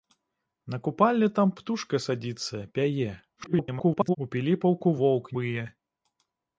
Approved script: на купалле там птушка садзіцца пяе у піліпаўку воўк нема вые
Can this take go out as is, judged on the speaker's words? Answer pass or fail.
fail